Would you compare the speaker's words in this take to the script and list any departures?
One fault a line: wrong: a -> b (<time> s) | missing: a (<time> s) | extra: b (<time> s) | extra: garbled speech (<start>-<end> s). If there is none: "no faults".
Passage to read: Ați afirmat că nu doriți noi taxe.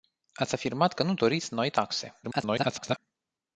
extra: garbled speech (2.2-3.0 s)